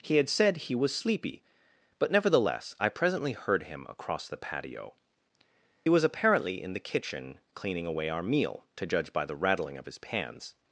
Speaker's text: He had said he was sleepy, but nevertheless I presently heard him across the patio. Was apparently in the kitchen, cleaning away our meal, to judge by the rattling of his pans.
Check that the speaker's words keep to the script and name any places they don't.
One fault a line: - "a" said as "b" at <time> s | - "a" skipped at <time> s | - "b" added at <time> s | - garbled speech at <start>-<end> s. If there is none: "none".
none